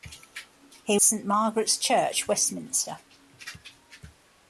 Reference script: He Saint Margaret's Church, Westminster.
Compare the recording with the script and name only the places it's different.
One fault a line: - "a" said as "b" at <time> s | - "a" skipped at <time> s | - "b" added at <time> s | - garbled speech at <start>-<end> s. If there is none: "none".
none